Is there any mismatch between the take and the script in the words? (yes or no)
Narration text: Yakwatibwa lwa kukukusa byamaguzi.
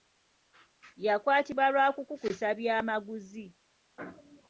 no